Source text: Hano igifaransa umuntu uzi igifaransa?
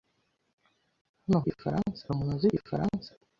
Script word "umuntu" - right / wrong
right